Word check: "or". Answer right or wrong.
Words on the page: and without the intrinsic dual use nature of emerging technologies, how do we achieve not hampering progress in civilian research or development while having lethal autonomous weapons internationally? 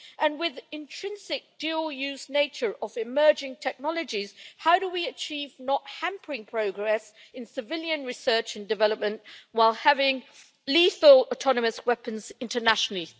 wrong